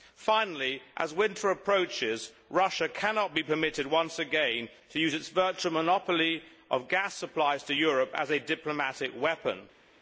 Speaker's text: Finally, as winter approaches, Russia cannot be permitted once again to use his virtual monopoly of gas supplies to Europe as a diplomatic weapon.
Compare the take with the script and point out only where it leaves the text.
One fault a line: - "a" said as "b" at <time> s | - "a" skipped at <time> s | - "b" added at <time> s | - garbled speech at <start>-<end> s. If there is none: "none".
- "his" said as "its" at 5.1 s